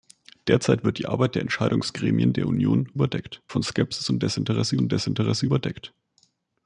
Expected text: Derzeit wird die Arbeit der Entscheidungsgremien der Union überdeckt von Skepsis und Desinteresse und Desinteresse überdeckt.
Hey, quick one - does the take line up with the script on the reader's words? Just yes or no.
yes